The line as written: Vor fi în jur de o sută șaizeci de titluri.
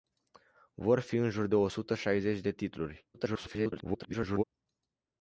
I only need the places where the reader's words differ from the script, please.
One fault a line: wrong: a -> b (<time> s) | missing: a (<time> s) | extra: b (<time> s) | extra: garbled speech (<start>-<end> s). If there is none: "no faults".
extra: garbled speech (3.1-4.4 s)